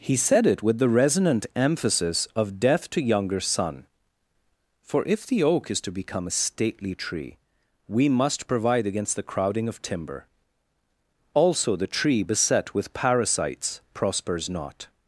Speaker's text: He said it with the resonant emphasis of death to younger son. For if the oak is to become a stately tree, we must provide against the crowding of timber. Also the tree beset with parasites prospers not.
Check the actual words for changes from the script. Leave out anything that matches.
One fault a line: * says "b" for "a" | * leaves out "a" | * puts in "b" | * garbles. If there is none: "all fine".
all fine